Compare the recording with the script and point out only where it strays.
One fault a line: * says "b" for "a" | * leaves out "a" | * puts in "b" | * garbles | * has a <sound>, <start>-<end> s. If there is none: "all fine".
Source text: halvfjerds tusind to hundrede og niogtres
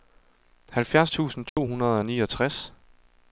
* has a dropout, 1.5-1.6 s